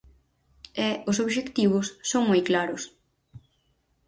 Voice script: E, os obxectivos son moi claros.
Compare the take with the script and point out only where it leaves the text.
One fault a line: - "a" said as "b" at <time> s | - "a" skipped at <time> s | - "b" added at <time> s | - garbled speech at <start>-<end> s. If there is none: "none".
none